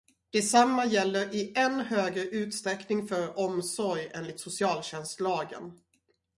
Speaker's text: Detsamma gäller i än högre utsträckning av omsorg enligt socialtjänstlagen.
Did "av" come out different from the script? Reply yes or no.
yes